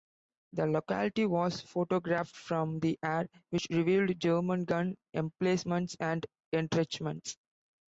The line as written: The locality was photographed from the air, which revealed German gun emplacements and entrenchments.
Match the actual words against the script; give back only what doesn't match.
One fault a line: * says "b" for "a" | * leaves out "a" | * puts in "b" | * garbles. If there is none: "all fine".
all fine